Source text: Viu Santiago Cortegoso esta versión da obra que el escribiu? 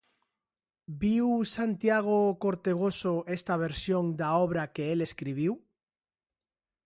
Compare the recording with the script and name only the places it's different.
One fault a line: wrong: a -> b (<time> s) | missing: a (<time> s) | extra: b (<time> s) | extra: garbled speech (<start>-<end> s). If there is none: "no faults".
no faults